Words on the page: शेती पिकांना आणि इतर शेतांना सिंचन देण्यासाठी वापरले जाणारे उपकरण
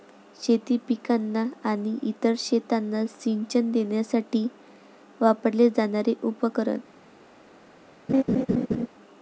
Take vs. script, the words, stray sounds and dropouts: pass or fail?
fail